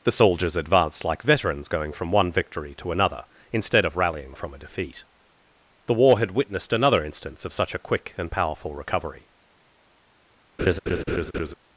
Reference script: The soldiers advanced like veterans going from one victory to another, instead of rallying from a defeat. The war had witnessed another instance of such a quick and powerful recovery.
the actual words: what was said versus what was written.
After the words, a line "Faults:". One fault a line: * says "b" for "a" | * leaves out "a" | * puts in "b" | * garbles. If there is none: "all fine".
The soldiers advanced like veterans going from one victory to another, instead of rallying from a defeat. The war had witnessed another instance of such a quick and powerful recovery.
Faults:
all fine